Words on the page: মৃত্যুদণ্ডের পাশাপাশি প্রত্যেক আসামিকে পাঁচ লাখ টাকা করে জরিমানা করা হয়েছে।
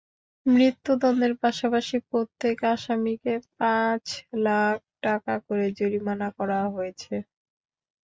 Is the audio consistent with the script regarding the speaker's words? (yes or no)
yes